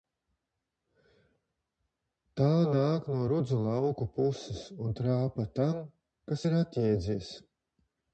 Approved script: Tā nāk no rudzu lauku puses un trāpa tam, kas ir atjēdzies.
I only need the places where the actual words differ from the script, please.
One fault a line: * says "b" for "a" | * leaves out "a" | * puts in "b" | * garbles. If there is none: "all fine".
all fine